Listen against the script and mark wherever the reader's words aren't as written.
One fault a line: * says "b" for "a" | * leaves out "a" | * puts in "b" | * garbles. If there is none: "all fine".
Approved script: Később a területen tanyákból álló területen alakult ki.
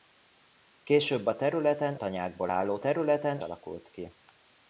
all fine